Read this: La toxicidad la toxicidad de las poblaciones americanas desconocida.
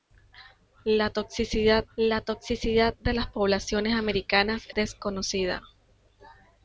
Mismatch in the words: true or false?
false